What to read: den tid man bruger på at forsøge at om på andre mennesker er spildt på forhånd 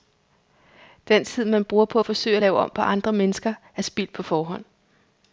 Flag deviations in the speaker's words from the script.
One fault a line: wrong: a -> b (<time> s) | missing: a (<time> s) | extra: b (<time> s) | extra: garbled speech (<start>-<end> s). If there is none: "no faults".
extra: lave (2.4 s)